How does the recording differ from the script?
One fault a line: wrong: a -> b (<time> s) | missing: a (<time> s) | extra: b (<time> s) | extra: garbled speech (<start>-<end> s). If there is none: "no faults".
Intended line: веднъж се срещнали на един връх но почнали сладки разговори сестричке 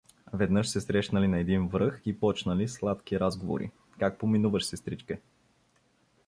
wrong: но -> и (2.0 s)
extra: как поминуваш (4.0 s)